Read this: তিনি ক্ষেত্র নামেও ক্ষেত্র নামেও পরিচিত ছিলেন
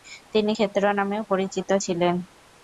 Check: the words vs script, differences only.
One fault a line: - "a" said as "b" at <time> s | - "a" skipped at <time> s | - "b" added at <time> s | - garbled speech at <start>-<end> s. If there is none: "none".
- "ক্ষেত্র নামেও" skipped at 1.2 s